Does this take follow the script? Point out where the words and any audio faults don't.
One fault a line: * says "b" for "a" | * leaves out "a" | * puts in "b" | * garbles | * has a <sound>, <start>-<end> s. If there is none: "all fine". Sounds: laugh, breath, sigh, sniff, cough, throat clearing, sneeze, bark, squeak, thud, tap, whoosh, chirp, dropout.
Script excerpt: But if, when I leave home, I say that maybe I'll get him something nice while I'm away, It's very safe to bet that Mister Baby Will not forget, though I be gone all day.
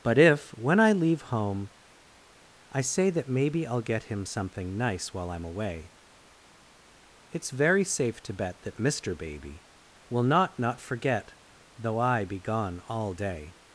* puts in "not"